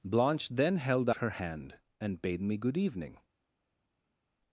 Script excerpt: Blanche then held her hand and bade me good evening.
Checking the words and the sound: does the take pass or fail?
pass